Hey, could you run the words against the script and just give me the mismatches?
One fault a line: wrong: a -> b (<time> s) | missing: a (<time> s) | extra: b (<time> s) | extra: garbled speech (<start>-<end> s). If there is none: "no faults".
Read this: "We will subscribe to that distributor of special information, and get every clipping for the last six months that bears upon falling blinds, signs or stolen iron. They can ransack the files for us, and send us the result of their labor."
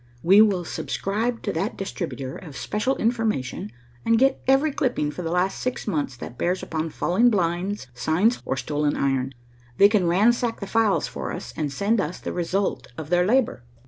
no faults